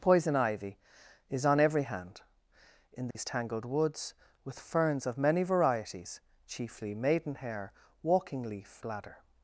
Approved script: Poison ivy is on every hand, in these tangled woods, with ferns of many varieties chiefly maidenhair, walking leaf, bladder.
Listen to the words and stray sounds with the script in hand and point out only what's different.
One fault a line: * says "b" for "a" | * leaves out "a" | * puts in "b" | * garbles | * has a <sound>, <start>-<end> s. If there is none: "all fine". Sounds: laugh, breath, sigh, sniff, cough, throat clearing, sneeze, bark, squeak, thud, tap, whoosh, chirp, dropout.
* has a dropout, 3.1-3.2 s